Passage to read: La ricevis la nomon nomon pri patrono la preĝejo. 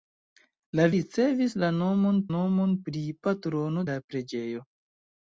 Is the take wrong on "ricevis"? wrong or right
right